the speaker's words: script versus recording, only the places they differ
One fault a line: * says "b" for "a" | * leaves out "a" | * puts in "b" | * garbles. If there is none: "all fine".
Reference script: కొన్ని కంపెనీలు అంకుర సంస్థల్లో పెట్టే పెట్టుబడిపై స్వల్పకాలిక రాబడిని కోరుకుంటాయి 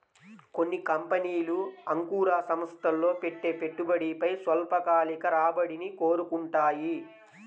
all fine